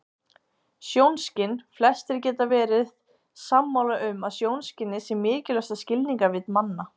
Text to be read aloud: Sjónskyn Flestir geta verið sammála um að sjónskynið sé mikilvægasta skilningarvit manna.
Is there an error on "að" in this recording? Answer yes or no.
no